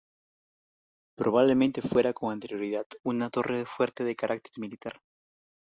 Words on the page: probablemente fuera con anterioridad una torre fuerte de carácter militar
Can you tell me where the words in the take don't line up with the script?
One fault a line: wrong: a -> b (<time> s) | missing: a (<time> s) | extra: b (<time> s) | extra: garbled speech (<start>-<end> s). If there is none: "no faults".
no faults